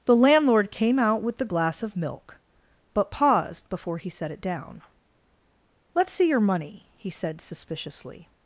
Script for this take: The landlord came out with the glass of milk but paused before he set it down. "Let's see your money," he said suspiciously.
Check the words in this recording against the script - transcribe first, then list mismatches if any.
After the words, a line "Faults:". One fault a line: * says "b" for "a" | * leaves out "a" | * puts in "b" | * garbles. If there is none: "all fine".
The landlord came out with the glass of milk but paused before he set it down. "Let's see your money," he said suspiciously.
Faults:
all fine